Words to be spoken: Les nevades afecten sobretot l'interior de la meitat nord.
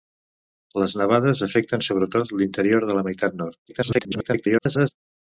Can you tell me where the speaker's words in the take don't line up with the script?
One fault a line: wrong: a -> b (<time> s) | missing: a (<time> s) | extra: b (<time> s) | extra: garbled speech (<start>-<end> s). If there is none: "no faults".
extra: garbled speech (3.7-4.9 s)